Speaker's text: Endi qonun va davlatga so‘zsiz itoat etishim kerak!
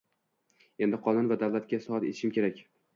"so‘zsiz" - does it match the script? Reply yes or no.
no